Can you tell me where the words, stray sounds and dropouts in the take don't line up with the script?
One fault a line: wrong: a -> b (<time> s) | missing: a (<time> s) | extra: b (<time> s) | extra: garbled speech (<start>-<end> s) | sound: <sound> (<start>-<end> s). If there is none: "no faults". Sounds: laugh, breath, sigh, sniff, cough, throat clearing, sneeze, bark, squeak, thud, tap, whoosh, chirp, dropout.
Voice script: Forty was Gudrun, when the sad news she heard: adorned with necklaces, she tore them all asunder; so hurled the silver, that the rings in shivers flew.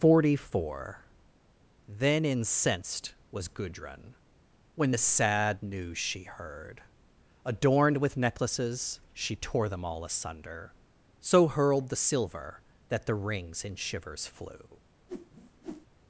extra: four Then incensed (0.5 s)
sound: whoosh (15.1-15.9 s)